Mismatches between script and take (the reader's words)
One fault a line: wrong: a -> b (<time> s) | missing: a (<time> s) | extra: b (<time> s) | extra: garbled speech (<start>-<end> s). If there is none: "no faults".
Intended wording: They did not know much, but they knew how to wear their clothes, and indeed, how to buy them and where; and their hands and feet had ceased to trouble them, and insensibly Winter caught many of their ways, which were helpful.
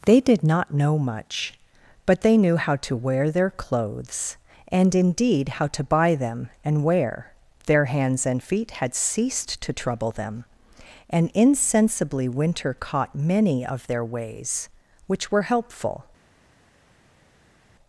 wrong: where and -> wear (6.8 s)